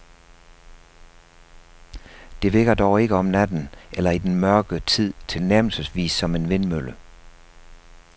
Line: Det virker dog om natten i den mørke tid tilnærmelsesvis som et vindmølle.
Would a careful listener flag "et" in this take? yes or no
yes